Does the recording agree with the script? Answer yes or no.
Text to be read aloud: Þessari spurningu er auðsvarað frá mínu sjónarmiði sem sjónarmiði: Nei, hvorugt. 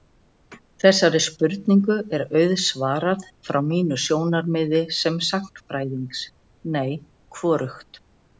no